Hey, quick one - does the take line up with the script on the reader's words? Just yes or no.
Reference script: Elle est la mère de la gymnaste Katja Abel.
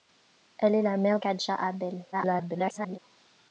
no